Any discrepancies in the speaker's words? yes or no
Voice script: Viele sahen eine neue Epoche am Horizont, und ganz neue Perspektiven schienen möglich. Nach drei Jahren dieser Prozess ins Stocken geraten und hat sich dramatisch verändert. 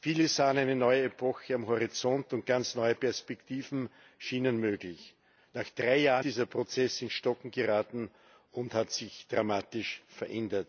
no